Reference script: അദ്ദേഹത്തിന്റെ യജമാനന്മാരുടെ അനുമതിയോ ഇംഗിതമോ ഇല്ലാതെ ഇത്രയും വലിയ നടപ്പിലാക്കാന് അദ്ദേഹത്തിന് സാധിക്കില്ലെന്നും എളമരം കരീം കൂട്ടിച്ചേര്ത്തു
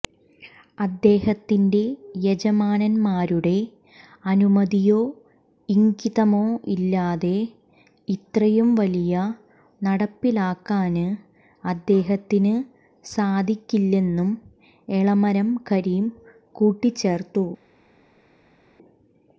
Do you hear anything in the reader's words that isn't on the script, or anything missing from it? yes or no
no